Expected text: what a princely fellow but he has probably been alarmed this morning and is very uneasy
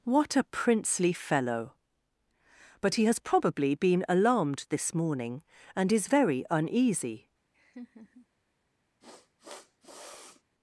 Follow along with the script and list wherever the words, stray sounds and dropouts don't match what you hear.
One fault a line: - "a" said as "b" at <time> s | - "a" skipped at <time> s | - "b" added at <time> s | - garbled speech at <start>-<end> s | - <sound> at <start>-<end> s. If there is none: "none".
- laugh at 7.5-8.3 s
- sniff at 9.0-10.4 s